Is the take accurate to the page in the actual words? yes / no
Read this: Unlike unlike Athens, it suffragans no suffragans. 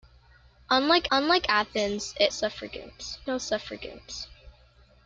yes